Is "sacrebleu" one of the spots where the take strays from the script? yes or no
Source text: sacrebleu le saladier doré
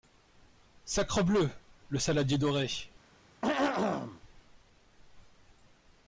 no